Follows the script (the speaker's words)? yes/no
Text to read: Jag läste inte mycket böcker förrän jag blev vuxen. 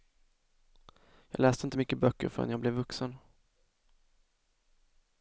yes